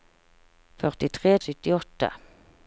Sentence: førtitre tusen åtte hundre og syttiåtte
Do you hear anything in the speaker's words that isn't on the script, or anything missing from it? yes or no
yes